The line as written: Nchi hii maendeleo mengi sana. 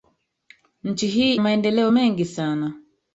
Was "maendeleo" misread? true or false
false